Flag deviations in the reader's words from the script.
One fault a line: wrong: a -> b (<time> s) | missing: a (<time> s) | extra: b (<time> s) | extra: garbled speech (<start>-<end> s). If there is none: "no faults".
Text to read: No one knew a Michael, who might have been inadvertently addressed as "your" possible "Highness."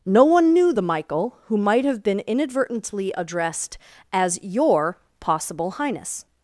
wrong: a -> the (0.7 s)